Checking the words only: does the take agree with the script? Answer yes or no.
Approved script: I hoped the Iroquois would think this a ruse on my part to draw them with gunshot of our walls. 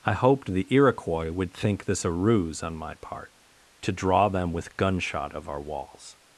yes